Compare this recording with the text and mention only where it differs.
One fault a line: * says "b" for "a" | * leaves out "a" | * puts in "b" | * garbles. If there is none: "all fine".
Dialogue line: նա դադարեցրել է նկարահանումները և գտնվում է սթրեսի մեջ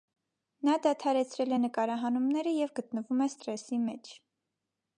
all fine